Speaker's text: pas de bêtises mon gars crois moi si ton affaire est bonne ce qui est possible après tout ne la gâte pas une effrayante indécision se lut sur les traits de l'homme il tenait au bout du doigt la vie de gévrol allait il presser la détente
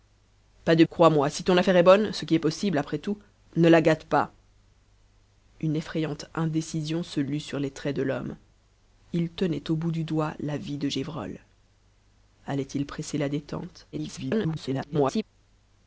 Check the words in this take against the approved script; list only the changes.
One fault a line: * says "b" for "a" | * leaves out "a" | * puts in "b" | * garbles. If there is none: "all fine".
* leaves out "bêtises mon gars"
* garbles